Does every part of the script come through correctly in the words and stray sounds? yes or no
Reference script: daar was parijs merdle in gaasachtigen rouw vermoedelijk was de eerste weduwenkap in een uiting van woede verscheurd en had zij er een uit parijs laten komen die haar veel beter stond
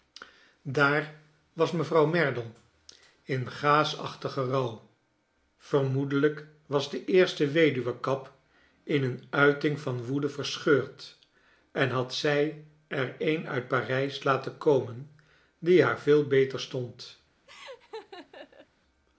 no